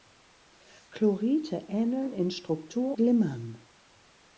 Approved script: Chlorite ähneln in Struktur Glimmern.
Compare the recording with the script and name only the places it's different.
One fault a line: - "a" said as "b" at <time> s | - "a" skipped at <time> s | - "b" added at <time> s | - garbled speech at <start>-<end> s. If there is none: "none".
none